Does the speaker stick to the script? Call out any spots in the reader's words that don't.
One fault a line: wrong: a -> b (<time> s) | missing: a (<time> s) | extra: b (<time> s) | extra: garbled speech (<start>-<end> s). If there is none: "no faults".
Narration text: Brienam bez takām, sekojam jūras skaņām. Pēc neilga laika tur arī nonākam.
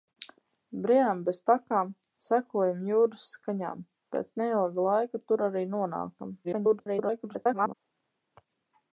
extra: garbled speech (6.4-7.7 s)